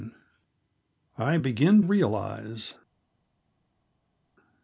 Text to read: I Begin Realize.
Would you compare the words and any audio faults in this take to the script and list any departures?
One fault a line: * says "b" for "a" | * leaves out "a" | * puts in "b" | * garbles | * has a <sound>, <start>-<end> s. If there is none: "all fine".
all fine